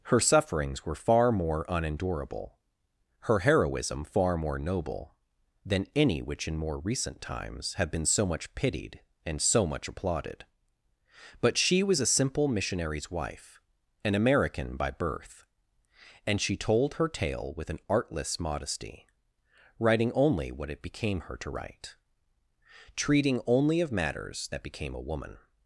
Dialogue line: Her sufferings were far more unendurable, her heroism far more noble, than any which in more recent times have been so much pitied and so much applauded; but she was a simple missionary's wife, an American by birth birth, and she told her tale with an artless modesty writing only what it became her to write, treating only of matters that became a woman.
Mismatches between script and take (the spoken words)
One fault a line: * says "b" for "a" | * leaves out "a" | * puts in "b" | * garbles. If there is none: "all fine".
* leaves out "birth"